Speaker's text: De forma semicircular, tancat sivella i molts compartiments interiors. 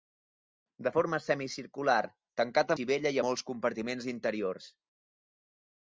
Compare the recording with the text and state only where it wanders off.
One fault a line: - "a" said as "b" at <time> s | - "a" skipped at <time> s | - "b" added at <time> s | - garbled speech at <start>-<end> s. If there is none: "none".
none